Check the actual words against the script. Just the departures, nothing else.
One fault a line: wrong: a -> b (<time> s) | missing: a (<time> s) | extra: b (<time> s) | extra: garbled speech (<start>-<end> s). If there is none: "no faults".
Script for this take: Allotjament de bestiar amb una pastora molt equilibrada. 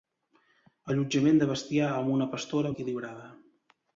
missing: molt (2.7 s)